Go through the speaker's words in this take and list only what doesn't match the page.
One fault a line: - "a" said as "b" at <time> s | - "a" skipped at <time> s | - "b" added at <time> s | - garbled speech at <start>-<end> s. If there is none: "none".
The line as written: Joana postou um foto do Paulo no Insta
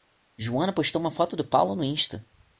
- "um" said as "uma" at 1.0 s